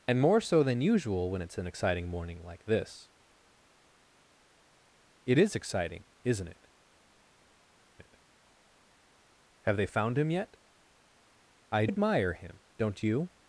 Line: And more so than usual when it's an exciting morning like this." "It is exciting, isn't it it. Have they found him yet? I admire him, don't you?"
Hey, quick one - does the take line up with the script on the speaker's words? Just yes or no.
yes